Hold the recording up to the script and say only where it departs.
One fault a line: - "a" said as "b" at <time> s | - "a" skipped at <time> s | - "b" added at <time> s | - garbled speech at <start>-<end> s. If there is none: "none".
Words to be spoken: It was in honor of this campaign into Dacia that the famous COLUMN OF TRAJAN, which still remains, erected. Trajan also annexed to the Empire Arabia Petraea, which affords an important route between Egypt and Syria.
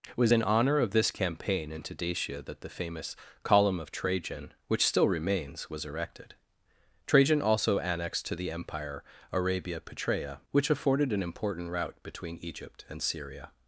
- "was" added at 5.7 s
- "affords" said as "afforded" at 10.7 s